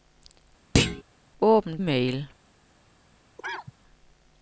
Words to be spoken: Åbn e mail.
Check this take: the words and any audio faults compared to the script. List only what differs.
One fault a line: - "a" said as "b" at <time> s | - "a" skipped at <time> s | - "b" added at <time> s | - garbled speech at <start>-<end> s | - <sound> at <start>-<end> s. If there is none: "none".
- thud at 0.7-1.0 s
- cough at 3.4-3.7 s